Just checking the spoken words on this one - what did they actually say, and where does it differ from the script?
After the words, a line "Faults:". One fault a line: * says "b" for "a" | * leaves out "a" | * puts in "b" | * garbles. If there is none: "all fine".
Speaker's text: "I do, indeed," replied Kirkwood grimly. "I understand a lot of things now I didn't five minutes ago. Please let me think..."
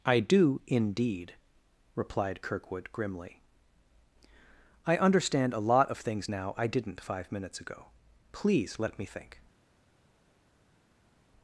"I do, indeed," replied Kirkwood grimly. "I understand a lot of things now I didn't five minutes ago. Please let me think..."
Faults:
all fine